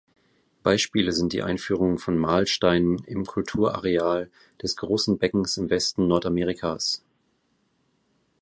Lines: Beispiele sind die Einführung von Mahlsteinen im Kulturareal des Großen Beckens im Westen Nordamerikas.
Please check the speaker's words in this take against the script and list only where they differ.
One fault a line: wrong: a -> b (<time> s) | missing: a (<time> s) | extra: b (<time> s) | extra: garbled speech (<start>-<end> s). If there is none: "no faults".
no faults